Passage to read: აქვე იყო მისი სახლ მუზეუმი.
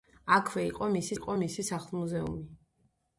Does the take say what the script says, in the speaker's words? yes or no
no